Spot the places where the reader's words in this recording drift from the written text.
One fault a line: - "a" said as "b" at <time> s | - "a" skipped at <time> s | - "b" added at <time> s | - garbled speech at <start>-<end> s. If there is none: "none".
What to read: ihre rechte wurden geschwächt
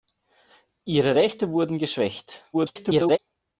- garbled speech at 2.5-3.2 s